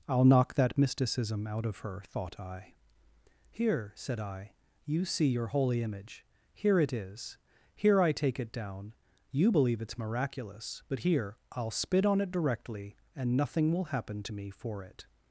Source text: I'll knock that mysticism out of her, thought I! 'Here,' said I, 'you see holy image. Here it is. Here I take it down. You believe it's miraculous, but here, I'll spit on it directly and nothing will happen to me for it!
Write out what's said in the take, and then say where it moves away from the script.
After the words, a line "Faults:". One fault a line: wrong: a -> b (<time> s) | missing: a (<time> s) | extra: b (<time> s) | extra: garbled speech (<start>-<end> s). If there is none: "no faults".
I'll knock that mysticism out of her, thought I! 'Here,' said I, 'you see your holy image. Here it is. Here I take it down. You believe it's miraculous, but here, I'll spit on it directly and nothing will happen to me for it!
Faults:
extra: your (5.3 s)